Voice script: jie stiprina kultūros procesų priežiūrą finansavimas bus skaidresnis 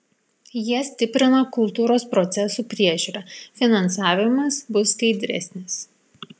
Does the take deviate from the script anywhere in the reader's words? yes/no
no